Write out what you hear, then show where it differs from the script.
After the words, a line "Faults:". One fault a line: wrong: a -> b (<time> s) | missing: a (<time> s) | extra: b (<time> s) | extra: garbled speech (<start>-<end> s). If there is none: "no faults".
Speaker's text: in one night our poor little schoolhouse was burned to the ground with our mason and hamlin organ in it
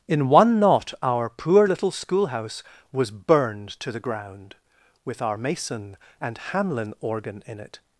in one knot our poor little schoolhouse was burned to the ground with our mason and hamlin organ in it
Faults:
wrong: night -> knot (0.6 s)